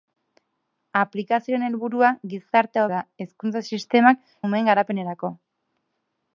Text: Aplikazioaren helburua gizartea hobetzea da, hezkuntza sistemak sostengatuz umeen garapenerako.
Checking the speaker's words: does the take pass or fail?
fail